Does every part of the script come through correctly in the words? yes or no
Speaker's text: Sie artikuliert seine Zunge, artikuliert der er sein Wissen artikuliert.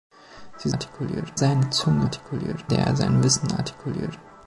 yes